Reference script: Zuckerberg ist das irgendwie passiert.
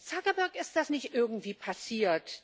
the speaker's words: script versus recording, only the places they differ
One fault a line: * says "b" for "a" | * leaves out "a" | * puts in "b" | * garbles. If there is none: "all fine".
* puts in "nicht"